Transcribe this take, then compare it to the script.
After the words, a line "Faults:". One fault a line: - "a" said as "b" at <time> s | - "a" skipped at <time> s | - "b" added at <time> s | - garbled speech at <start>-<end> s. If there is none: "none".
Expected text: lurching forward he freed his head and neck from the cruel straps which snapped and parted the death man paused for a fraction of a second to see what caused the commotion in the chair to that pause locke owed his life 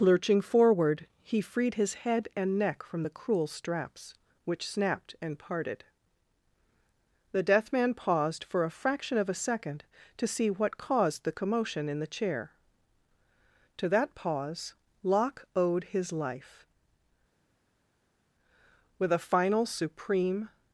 lurching forward he freed his head and neck from the cruel straps which snapped and parted the death man paused for a fraction of a second to see what caused the commotion in the chair to that pause locke owed his life with a final supreme
Faults:
- "with a final supreme" added at 19.0 s